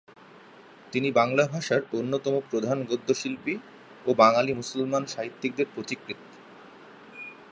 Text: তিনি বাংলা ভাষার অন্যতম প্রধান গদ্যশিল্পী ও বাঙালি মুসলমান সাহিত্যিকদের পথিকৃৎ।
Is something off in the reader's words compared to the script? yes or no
no